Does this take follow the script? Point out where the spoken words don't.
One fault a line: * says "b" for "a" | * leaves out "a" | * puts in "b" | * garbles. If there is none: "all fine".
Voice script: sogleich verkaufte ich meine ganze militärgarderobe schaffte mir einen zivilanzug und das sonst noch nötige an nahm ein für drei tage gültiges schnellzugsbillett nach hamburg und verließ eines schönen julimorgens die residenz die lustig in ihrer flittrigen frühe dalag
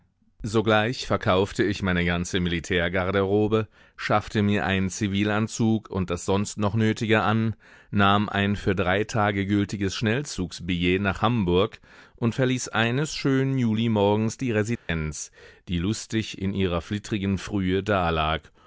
all fine